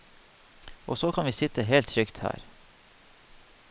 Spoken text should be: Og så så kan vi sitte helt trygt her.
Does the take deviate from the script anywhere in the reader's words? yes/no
yes